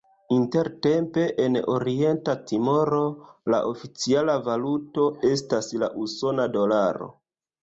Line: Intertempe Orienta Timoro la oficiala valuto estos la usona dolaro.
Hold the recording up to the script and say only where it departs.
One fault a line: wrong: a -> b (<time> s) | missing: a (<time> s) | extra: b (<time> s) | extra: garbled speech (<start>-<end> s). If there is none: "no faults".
extra: en (1.5 s)
wrong: estos -> estas (5.3 s)